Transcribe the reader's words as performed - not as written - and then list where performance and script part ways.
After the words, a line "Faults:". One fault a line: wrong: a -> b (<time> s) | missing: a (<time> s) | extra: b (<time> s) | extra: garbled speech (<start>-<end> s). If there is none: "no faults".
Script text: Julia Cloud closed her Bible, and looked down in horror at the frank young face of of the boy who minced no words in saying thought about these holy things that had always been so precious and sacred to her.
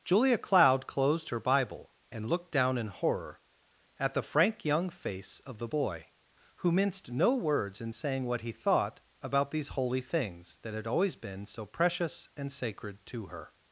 Julia Cloud closed her Bible, and looked down in horror at the frank young face of the boy who minced no words in saying what he thought about these holy things that had always been so precious and sacred to her.
Faults:
missing: of (5.6 s)
extra: what he (8.3 s)